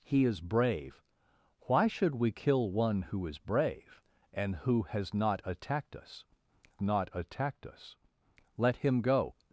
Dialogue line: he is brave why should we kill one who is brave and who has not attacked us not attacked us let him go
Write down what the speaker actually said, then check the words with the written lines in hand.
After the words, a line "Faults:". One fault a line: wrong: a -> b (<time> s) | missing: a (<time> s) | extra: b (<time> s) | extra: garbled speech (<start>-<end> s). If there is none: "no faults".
he is brave why should we kill one who is brave and who has not attacked us not attacked us let him go
Faults:
no faults